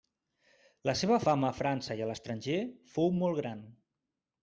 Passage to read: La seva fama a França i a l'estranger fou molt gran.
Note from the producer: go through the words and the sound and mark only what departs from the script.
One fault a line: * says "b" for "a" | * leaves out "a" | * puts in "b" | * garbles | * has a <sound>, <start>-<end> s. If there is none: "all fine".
all fine